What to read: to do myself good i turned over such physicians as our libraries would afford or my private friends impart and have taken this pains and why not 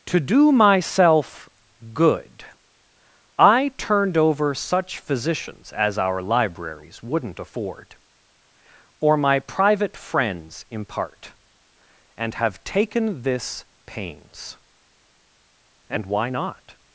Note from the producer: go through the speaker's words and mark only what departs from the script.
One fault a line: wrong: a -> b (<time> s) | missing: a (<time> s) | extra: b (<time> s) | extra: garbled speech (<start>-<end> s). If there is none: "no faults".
wrong: would -> wouldn't (7.0 s)